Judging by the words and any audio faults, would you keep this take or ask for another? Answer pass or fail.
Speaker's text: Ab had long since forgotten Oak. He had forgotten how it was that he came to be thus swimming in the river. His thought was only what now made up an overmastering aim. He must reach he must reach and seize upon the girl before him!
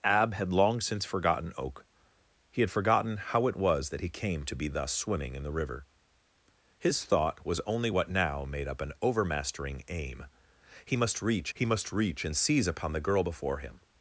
pass